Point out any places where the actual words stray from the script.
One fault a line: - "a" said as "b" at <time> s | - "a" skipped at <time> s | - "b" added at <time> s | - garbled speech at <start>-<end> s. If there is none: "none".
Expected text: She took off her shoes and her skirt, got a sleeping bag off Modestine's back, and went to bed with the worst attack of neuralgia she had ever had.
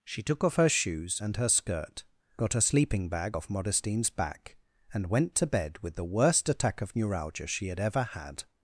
none